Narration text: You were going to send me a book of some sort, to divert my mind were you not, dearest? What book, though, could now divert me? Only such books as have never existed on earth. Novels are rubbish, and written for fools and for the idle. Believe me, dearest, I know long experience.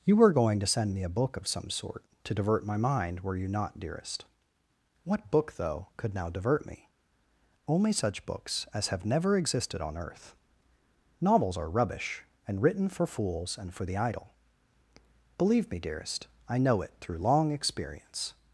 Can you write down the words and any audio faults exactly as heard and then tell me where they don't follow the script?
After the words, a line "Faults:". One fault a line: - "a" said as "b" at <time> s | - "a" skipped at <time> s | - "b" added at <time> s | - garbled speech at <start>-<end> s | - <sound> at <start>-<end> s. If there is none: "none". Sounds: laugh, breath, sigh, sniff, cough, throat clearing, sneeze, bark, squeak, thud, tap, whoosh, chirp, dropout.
You were going to send me a book of some sort, to divert my mind were you not, dearest? What book, though, could now divert me? Only such books as have never existed on earth. Novels are rubbish, and written for fools and for the idle. Believe me, dearest, I know it through long experience.
Faults:
- "it through" added at 16.8 s